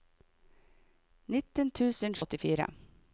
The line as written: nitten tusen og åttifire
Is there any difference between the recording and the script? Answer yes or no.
no